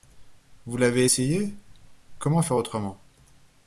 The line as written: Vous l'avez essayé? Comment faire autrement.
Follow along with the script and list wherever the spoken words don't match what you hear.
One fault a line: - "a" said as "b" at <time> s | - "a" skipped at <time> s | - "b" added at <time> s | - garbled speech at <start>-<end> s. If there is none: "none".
none